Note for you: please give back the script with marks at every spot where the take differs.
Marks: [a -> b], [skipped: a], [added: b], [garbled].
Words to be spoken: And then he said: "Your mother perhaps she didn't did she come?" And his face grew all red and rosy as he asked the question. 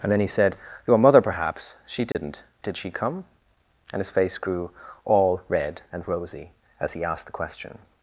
And then he said: "Your mother perhaps she didn't did she come?" And his face grew all red and rosy as he asked the question.